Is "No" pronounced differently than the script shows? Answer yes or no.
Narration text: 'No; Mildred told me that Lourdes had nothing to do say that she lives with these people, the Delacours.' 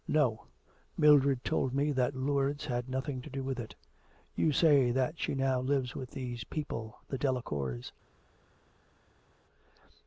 no